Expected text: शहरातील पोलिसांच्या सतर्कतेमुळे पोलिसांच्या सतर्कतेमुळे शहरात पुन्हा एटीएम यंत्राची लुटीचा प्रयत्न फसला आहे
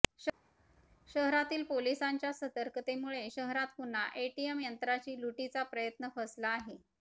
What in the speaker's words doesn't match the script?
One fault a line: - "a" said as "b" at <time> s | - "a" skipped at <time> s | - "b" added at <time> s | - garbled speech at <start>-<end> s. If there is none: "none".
- "पोलिसांच्या सतर्कतेमुळे" skipped at 3.3 s